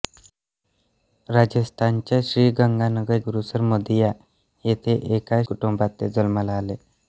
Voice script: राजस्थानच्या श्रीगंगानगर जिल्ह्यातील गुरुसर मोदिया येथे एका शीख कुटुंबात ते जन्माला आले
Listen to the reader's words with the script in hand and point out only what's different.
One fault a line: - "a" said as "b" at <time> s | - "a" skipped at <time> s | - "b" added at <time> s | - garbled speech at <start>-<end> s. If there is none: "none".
- "जिल्ह्यातील" skipped at 3.2 s
- "शीख" skipped at 5.4 s